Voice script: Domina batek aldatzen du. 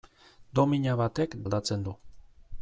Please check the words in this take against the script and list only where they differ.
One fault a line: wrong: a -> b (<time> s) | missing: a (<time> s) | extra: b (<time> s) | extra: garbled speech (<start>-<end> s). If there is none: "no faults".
no faults